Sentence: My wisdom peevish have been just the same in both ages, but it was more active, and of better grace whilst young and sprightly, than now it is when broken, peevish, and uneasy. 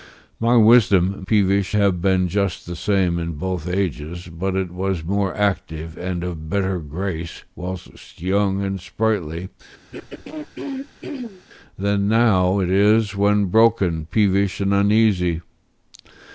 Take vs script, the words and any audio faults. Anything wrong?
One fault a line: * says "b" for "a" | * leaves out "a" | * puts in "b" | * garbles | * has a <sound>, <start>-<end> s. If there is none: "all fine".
* has a throat clearing, 9.9-11.4 s